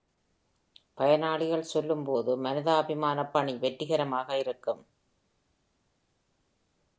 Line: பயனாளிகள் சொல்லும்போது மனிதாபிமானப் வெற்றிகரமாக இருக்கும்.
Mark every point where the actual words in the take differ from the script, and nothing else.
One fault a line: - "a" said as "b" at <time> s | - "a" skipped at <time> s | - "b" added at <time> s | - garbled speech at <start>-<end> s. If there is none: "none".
- "பணி" added at 3.3 s